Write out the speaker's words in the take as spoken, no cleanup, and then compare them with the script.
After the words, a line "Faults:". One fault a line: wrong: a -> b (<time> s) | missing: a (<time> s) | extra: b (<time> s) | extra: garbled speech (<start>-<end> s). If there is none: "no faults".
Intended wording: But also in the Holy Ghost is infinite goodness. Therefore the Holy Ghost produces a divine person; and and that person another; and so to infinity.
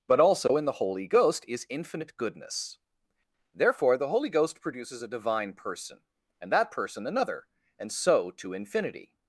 But also in the Holy Ghost is infinite goodness. Therefore the Holy Ghost produces a divine person; and that person another; and so to infinity.
Faults:
missing: and (6.5 s)